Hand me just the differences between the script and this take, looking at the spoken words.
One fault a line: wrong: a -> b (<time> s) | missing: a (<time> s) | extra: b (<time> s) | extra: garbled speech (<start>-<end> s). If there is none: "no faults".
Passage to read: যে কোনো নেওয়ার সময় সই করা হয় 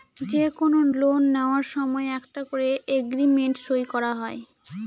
extra: লোন (0.9 s)
extra: একটা করে এগ্রিমেন্ট (2.2 s)